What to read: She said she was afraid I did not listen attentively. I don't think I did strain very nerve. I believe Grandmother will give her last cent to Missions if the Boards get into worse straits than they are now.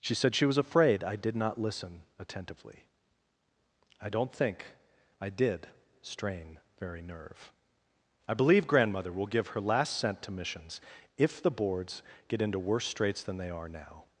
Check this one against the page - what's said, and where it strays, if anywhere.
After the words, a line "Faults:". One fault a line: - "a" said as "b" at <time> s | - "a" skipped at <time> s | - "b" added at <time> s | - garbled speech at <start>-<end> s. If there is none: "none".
She said she was afraid I did not listen attentively. I don't think I did strain very nerve. I believe Grandmother will give her last cent to Missions if the Boards get into worse straits than they are now.
Faults:
none